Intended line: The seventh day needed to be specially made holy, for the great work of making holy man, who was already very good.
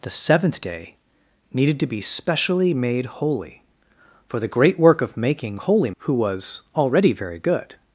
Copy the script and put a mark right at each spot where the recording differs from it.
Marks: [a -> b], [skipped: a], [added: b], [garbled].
The seventh day needed to be specially made holy, for the great work of making holy [skipped: man,] who was already very good.